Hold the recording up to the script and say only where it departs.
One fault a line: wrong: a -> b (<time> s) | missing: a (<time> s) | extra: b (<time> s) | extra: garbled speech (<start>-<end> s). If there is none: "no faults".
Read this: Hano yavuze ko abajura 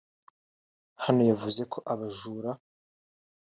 no faults